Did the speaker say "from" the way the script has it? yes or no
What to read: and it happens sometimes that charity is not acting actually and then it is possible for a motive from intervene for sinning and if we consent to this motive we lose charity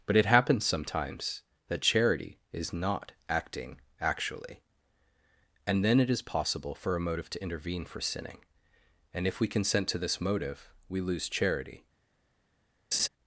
no